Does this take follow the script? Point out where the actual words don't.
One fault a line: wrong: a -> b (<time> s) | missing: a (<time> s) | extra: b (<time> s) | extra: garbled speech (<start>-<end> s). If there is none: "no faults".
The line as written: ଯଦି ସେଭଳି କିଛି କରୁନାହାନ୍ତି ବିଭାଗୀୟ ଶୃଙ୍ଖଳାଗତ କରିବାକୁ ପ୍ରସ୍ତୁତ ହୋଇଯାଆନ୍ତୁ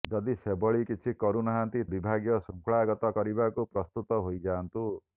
no faults